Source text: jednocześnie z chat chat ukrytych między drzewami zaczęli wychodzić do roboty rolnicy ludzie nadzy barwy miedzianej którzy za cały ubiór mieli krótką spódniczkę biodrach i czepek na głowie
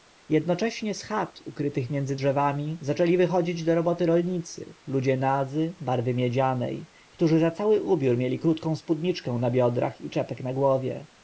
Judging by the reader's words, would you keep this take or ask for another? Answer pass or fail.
fail